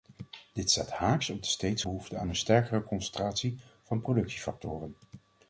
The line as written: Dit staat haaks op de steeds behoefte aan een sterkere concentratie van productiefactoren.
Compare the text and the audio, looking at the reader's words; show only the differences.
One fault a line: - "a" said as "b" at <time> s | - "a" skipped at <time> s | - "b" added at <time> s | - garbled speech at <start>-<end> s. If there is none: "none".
none